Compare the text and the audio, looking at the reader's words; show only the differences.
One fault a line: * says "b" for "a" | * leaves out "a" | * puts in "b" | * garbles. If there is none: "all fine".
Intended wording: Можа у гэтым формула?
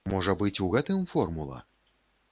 * puts in "быць"